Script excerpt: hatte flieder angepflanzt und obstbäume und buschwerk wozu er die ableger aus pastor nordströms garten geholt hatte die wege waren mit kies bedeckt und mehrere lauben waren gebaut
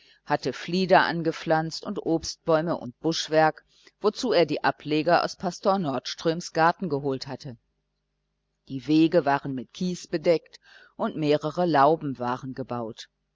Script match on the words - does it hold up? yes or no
yes